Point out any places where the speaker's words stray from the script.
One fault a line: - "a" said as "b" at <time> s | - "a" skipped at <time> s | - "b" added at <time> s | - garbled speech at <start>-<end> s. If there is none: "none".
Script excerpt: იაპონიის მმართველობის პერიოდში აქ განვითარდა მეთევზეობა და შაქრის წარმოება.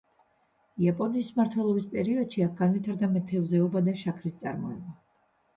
none